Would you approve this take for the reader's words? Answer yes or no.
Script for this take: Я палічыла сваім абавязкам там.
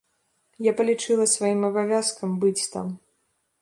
no